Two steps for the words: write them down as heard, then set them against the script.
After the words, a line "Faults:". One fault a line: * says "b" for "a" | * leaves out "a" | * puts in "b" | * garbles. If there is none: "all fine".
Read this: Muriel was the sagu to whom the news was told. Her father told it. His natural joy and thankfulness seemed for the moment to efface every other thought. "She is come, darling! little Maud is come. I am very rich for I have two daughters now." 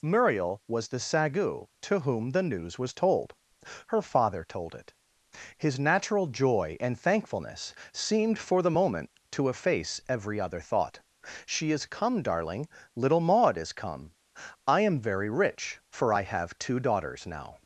Muriel was the sagu to whom the news was told. Her father told it. His natural joy and thankfulness seemed for the moment to efface every other thought. "She is come, darling! little Maud is come. I am very rich for I have two daughters now."
Faults:
all fine